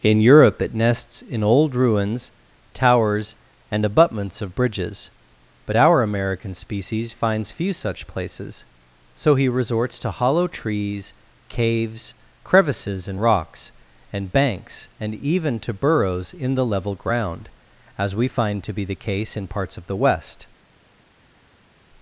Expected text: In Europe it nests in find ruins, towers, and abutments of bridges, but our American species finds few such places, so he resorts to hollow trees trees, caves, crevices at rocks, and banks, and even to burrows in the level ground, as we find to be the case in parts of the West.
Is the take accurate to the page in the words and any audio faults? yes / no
no